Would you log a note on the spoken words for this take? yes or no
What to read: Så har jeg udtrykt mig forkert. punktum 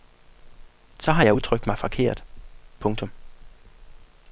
no